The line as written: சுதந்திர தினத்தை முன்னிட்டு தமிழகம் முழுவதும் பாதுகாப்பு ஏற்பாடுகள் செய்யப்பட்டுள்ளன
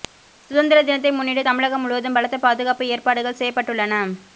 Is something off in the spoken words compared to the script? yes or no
yes